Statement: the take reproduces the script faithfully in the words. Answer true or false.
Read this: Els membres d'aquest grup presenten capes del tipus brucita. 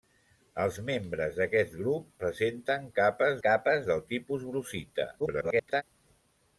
false